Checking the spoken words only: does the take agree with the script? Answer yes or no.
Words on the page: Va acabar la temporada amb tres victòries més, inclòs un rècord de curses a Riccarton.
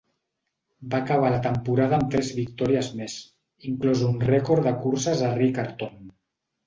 yes